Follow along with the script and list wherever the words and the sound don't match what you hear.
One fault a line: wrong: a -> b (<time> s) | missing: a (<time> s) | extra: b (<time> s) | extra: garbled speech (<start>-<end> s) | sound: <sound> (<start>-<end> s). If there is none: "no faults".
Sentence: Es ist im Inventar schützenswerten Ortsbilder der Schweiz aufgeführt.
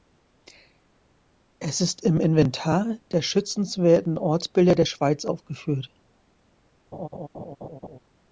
extra: der (3.1 s)
sound: laugh (6.9-8.0 s)